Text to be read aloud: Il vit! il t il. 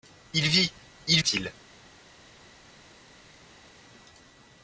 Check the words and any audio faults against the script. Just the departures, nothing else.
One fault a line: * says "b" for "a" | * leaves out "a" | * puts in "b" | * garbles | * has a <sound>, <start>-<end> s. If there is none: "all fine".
all fine